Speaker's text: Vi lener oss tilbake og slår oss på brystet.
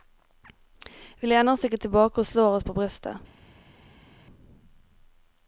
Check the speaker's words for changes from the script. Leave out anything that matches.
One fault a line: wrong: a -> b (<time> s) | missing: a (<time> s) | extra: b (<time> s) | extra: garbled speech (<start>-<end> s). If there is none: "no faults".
extra: ikke (1.7 s)